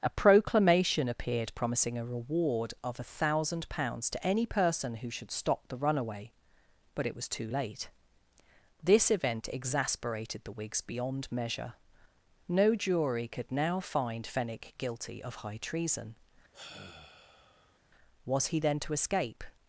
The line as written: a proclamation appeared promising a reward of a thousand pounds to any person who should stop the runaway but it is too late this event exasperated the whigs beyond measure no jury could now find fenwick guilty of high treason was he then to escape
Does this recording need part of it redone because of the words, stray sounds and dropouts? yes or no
yes